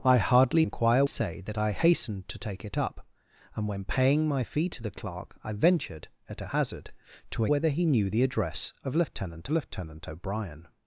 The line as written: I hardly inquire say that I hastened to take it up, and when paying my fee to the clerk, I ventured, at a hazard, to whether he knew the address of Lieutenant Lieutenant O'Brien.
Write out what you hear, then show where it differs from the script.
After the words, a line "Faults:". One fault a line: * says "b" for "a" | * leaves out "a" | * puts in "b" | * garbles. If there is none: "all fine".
I hardly inquire say that I hastened to take it up, and when paying my fee to the clerk, I ventured, at a hazard, to whether he knew the address of Lieutenant Lieutenant O'Brien.
Faults:
all fine